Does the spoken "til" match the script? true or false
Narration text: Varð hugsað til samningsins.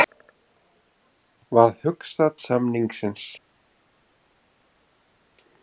false